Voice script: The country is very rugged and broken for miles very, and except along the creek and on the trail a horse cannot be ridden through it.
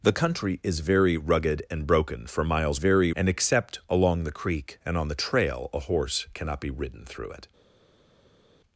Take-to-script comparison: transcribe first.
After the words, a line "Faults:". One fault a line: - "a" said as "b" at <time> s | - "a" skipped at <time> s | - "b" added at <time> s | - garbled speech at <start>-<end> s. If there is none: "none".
The country is very rugged and broken for miles very, and except along the creek and on the trail a horse cannot be ridden through it.
Faults:
none